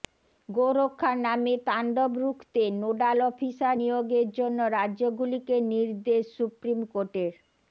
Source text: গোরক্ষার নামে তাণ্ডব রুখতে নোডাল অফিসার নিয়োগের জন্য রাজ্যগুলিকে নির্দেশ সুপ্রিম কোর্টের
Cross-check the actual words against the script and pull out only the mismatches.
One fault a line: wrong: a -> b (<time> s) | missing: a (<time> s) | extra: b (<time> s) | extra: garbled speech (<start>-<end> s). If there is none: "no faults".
no faults